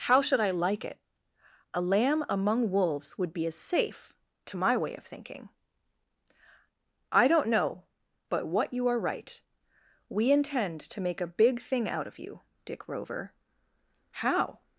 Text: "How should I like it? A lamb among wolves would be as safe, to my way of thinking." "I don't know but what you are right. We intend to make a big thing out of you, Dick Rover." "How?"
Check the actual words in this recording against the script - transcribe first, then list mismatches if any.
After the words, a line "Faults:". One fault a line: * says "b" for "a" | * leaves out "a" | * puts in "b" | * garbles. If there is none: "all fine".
"How should I like it? A lamb among wolves would be as safe, to my way of thinking." "I don't know but what you are right. We intend to make a big thing out of you, Dick Rover." "How?"
Faults:
all fine